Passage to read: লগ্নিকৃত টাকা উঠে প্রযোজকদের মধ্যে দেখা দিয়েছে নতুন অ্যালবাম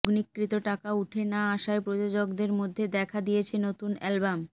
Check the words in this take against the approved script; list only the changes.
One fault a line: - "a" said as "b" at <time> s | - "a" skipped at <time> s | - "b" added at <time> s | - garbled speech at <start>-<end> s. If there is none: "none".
- "না আসায়" added at 1.2 s